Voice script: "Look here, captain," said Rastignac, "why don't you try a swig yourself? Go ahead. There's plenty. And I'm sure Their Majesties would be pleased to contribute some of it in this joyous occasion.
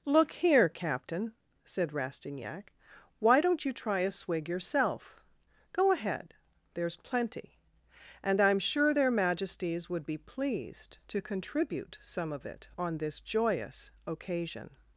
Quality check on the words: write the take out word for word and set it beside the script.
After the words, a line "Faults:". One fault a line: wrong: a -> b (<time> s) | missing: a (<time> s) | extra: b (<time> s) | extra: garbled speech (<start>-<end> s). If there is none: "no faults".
"Look here, captain," said Rastignac, "why don't you try a swig yourself? Go ahead. There's plenty. And I'm sure Their Majesties would be pleased to contribute some of it on this joyous occasion.
Faults:
wrong: in -> on (12.8 s)